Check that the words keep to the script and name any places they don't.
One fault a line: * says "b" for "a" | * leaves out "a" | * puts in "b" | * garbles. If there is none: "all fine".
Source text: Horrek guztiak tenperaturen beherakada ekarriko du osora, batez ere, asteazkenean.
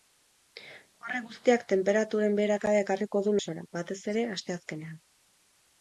all fine